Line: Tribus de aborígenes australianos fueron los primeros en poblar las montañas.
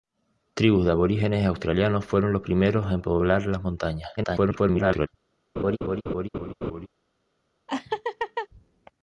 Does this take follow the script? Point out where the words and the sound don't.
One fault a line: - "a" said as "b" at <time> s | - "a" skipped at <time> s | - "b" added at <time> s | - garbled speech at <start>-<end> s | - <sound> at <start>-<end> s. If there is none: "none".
- garbled speech at 4.2-5.1 s
- laugh at 5.6-6.9 s
- laugh at 7.7-8.5 s